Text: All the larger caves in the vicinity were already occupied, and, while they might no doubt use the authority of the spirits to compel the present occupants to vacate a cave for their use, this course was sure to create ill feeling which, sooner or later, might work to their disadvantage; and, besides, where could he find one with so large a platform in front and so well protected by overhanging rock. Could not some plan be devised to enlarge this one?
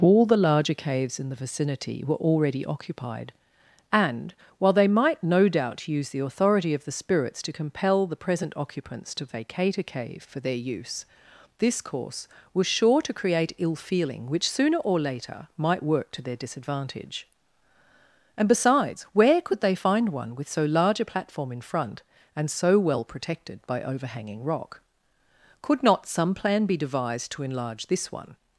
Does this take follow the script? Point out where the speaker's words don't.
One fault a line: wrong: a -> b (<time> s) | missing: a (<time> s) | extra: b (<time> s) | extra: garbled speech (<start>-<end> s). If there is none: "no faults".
wrong: he -> they (19.6 s)